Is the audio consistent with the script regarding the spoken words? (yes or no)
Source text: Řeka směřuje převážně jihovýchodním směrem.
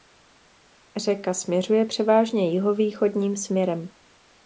yes